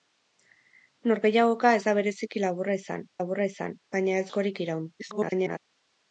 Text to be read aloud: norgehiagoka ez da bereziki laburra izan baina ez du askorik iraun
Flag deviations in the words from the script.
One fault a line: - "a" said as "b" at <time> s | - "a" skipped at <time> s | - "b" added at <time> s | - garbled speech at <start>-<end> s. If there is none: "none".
- "laburra izan" added at 3.2 s
- "du" skipped at 4.3 s
- garbled speech at 5.0-5.6 s